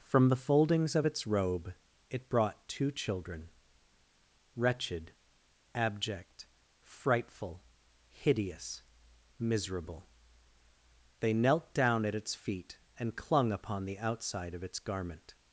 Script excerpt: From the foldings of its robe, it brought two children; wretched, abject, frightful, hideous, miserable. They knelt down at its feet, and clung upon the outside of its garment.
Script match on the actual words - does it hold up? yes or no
yes